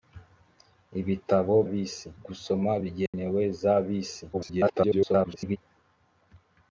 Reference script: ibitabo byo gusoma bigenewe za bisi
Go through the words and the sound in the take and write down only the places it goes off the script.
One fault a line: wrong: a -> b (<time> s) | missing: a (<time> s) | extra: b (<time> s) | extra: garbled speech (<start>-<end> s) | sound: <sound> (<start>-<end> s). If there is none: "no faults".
wrong: byo -> bisi (1.7 s)
sound: dropout (3.1-3.1 s)
extra: garbled speech (4.3-5.6 s)